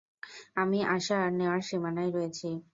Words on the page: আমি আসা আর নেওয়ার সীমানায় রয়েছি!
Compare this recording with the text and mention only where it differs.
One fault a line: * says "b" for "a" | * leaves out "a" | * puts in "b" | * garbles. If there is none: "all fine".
all fine